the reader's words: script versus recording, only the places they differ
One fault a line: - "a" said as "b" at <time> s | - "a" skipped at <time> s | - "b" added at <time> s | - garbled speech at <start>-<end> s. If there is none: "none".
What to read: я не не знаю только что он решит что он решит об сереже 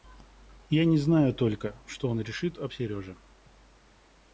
- "не" skipped at 1.0 s
- "что он решит" skipped at 2.6 s